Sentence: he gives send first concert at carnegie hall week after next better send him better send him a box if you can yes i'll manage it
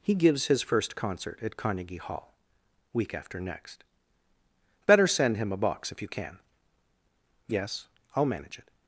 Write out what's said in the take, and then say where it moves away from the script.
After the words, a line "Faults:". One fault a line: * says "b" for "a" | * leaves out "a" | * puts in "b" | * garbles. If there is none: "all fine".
he gives his first concert at carnegie hall week after next better send him a box if you can yes i'll manage it
Faults:
* says "his" for "send"
* leaves out "better send him"